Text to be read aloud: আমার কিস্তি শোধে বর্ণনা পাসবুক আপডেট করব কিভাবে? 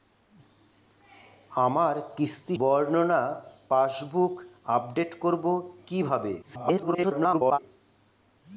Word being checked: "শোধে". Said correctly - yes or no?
no